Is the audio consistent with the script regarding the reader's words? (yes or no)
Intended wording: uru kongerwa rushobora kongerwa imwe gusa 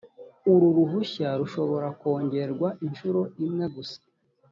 no